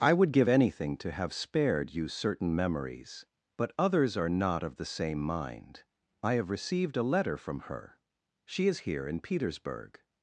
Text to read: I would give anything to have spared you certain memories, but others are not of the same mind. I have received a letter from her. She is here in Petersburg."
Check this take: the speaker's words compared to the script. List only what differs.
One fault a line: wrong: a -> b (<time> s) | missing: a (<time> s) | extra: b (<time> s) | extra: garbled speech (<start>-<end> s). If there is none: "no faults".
no faults